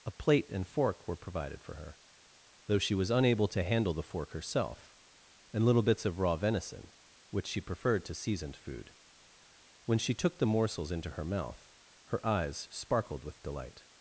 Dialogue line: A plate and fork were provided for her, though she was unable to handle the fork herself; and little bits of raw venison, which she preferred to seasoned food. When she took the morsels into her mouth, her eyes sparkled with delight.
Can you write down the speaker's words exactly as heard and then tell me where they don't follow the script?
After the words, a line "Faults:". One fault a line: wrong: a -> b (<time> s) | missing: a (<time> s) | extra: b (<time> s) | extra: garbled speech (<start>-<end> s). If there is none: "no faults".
A plate and fork were provided for her, though she was unable to handle the fork herself; and little bits of raw venison, which she preferred to seasoned food. When she took the morsels into her mouth, her eyes sparkled with delight.
Faults:
no faults